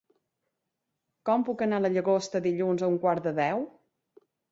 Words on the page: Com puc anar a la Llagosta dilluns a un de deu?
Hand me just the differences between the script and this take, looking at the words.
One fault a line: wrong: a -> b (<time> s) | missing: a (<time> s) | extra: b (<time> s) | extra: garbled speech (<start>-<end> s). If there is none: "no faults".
extra: quart (3.1 s)